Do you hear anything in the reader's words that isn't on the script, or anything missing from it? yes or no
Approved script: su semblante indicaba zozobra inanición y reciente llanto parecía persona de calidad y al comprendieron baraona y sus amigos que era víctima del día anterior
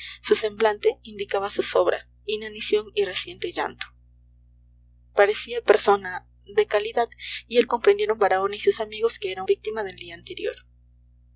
no